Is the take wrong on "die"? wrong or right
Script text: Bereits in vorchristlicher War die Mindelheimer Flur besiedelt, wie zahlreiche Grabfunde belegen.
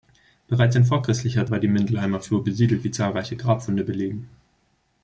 right